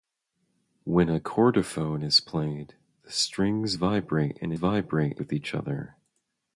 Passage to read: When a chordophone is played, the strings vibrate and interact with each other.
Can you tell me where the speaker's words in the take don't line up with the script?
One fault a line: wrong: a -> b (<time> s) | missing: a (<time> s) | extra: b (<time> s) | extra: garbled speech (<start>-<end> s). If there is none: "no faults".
wrong: interact -> vibrate (4.5 s)